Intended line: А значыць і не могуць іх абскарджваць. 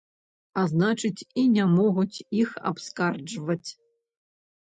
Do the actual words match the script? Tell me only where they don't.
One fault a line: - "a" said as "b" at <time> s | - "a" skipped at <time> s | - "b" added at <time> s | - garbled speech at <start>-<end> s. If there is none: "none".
none